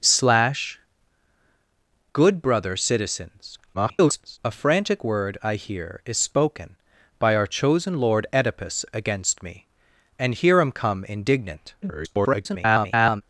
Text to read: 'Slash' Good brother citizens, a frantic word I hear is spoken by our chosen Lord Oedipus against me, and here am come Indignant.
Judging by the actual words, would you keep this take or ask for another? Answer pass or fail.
fail